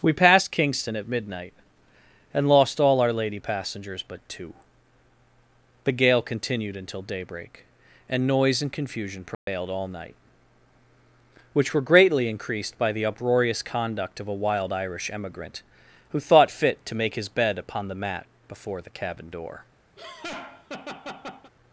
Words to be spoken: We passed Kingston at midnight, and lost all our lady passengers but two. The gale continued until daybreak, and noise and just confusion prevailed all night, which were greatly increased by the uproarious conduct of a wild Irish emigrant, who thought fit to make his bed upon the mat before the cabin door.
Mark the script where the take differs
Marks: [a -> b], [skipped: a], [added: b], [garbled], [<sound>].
We passed Kingston at midnight, and lost all our lady passengers but two. The gale continued until daybreak, and noise and [skipped: just] confusion prevailed [dropout] all night, which were greatly increased by the uproarious conduct of a wild Irish emigrant, who thought fit to make his bed upon the mat before the cabin door. [laugh]